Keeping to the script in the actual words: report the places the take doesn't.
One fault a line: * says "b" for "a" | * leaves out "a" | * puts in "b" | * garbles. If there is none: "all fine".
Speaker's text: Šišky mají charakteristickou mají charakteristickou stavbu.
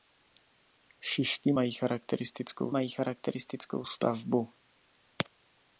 all fine